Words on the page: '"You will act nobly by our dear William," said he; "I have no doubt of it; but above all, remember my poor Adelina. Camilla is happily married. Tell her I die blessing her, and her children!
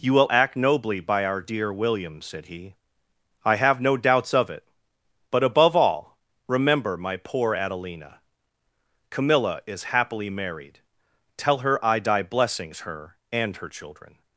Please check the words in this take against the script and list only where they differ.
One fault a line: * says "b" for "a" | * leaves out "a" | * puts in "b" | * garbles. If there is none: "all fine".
* says "doubts" for "doubt"
* says "blessings" for "blessing"